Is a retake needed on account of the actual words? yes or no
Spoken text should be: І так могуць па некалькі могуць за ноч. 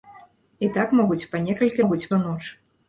no